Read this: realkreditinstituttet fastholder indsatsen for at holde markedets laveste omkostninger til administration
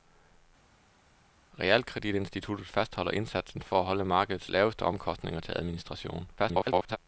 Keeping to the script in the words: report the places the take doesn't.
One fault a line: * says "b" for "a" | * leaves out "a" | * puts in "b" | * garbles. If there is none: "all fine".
* garbles